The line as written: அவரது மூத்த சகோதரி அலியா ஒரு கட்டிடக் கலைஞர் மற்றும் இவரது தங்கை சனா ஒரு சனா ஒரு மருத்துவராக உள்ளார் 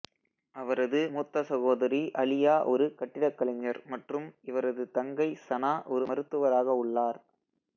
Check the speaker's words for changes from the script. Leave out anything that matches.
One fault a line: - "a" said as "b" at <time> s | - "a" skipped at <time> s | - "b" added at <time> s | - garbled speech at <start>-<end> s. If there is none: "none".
- "சனா ஒரு" skipped at 6.0 s